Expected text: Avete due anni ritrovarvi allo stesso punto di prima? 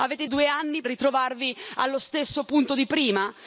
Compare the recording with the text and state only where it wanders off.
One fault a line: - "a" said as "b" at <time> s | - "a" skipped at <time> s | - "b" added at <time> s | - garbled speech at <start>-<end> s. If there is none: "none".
none